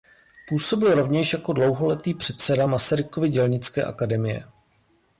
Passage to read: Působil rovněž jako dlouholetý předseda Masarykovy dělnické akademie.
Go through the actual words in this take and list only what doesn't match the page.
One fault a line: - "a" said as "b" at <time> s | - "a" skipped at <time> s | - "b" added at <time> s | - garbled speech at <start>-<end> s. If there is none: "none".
none